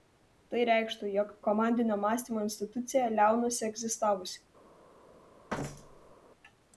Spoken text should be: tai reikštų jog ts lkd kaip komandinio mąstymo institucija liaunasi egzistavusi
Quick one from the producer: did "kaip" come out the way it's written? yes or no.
no